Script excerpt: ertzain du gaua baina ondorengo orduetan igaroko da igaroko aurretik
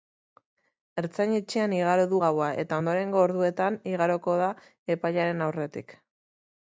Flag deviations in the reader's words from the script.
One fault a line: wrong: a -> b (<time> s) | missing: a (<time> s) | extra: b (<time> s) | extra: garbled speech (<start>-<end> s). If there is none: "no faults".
extra: etxean igaro (1.4 s)
wrong: baina -> eta (2.6 s)
wrong: igaroko -> epailearen (5.0 s)